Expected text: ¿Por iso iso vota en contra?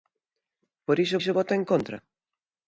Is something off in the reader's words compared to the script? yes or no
no